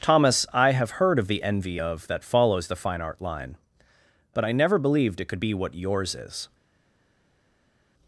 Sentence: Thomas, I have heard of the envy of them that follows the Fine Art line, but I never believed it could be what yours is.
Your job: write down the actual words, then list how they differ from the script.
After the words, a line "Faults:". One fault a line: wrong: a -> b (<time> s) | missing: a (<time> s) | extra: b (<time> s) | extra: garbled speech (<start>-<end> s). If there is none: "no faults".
Thomas, I have heard of the envy of that follows the Fine Art line, but I never believed it could be what yours is.
Faults:
missing: them (2.1 s)